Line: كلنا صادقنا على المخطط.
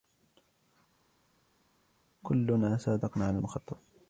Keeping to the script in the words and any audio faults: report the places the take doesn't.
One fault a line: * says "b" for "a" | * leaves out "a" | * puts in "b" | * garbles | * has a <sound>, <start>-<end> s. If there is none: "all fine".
all fine